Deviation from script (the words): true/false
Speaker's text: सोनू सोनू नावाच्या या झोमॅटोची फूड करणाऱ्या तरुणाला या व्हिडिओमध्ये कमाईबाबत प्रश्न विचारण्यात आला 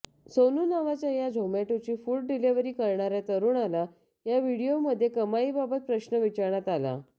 true